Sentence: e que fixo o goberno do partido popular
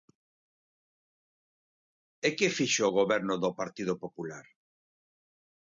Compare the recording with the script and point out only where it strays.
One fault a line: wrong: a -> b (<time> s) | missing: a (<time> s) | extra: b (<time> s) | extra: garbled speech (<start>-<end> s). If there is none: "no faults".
no faults